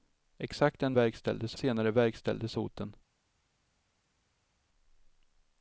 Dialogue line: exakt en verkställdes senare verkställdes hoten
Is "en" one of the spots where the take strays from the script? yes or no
no